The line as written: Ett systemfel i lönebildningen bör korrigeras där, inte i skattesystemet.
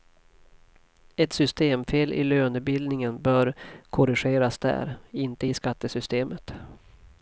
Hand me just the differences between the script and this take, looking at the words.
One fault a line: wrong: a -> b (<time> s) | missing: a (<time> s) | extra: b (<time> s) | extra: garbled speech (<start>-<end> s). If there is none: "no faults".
no faults